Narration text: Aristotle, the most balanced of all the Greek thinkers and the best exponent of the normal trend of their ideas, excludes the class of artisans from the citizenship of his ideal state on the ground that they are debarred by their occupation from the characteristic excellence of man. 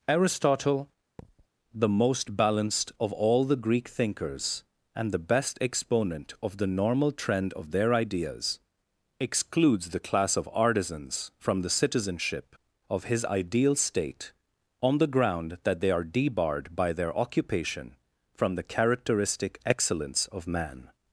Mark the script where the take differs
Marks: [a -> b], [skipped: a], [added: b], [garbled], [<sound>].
Aristotle, [thud] the most balanced of all the Greek thinkers and the best exponent of the normal trend of their ideas, excludes the class of artisans from the citizenship of his ideal state on the ground that they are debarred by their occupation from the characteristic excellence of man.